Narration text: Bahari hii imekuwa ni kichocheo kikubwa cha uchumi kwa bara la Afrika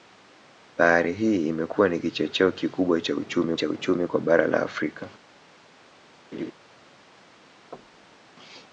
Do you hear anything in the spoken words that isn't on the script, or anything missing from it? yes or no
yes